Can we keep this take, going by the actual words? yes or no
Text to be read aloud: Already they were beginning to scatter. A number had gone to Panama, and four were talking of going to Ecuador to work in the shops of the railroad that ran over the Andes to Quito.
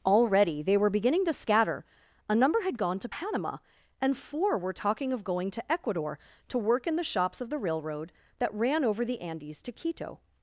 yes